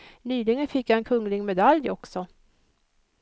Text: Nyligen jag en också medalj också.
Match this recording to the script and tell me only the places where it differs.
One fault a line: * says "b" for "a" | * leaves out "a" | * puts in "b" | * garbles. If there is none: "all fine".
* puts in "fick"
* says "kunglig" for "också"